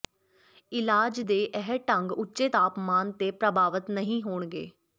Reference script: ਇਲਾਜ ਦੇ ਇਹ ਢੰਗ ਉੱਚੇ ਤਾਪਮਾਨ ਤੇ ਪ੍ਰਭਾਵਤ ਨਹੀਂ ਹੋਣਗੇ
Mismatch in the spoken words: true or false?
false